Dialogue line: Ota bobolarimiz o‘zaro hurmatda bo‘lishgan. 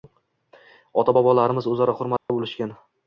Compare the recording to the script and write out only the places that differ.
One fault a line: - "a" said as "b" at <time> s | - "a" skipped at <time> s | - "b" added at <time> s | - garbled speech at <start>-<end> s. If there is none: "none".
none